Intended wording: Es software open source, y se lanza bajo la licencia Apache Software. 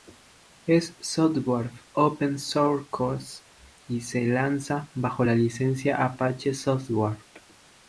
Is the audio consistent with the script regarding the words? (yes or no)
yes